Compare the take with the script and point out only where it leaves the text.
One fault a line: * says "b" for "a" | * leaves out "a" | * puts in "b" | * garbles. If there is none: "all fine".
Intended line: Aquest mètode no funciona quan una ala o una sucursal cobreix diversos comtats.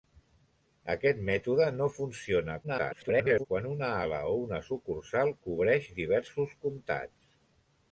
* garbles